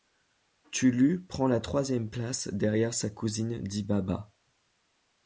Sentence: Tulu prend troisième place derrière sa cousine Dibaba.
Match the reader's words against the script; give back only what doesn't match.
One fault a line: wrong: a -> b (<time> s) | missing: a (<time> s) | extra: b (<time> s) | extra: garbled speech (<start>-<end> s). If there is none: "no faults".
extra: la (1.5 s)